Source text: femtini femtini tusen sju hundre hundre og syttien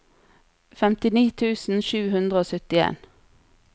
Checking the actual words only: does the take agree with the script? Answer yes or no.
no